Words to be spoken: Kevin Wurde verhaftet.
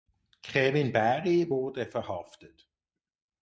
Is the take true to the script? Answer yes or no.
no